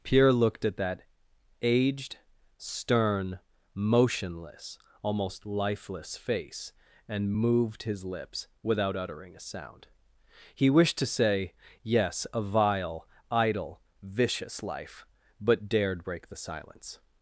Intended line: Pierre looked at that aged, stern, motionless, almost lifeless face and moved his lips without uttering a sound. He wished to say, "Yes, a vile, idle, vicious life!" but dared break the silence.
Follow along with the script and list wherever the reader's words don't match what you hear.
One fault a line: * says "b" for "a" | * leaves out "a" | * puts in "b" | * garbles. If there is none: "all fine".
all fine